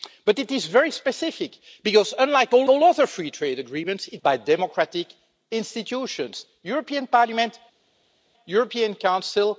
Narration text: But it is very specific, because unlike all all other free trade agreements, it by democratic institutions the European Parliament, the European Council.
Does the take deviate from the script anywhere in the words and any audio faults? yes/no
no